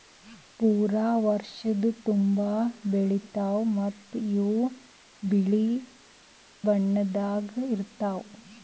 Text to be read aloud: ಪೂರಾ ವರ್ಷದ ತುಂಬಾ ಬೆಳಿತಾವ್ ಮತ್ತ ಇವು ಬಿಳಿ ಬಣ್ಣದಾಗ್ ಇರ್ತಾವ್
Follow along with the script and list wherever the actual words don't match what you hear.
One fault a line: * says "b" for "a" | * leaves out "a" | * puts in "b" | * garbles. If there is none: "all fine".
all fine